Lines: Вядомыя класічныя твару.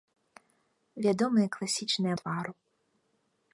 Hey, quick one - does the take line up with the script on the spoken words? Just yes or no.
yes